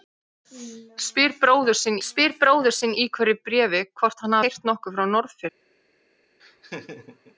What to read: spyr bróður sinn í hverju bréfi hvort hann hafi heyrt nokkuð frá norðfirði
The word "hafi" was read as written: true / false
false